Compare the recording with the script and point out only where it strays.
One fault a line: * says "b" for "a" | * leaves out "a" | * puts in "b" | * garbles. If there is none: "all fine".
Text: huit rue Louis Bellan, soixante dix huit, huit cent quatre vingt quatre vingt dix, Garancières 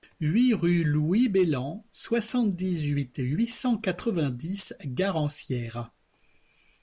* leaves out "quatre vingt"